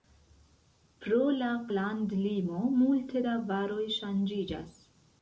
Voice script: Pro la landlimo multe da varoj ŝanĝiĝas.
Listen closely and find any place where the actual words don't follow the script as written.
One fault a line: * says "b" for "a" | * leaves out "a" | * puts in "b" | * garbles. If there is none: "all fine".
all fine